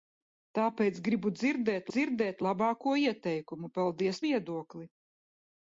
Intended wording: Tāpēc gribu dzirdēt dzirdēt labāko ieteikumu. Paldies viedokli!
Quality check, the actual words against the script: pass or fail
pass